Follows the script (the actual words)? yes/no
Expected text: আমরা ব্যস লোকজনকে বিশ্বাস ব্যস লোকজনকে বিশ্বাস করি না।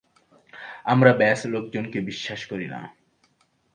no